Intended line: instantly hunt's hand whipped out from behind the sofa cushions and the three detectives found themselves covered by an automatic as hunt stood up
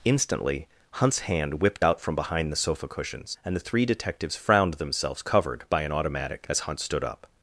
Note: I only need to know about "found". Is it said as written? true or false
false